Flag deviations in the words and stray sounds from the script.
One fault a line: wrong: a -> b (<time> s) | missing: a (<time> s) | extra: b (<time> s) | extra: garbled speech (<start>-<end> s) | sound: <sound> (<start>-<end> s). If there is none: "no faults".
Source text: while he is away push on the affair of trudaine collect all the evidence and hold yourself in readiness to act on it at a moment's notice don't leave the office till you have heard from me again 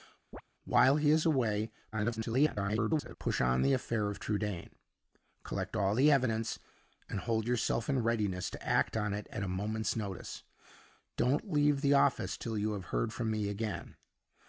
sound: chirp (0.3-0.4 s)
extra: garbled speech (1.9-3.2 s)